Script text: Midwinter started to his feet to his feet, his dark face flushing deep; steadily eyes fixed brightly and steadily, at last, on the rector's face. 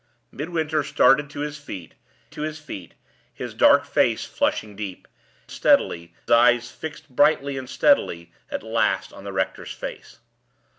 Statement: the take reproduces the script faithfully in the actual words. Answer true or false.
true